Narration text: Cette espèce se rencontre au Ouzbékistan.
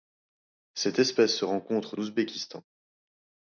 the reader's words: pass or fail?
pass